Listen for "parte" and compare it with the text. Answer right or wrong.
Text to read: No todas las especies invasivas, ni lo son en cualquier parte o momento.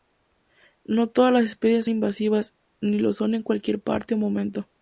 right